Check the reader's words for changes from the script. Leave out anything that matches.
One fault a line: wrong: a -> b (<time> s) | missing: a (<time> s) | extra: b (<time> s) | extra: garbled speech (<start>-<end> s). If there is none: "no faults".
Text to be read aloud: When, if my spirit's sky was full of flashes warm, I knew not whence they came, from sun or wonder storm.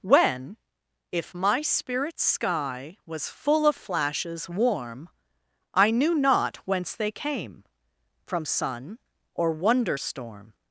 no faults